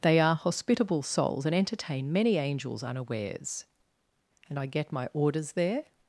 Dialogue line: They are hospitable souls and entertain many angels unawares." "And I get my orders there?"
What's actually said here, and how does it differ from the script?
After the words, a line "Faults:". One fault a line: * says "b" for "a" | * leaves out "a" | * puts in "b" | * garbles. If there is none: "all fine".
They are hospitable souls and entertain many angels unawares." "And I get my orders there?"
Faults:
all fine